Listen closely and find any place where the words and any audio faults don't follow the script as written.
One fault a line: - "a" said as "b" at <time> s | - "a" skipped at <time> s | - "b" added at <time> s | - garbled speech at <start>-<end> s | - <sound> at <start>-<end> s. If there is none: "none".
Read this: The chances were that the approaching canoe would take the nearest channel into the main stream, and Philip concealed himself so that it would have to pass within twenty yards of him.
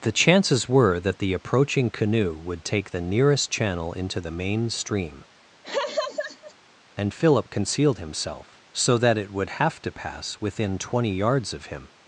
- laugh at 5.6-6.5 s